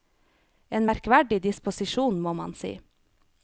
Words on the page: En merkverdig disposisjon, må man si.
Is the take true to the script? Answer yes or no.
yes